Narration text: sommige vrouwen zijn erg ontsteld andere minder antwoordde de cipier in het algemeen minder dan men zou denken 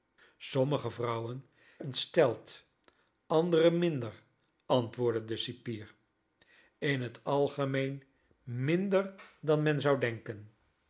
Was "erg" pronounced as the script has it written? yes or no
no